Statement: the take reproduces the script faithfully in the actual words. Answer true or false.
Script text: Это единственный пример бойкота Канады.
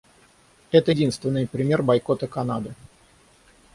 true